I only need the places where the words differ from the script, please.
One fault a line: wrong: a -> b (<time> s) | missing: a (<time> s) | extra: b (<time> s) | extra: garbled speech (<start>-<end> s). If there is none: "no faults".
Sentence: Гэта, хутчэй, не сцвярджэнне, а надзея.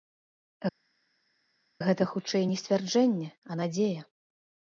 no faults